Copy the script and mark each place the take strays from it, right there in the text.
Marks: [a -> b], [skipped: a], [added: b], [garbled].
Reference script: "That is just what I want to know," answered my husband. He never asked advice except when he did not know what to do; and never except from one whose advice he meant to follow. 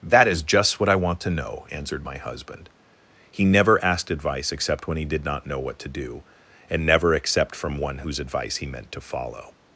"That is just what I want to know," answered my husband. He never asked advice except when he did not know what to do; and never except from one whose advice he meant to follow.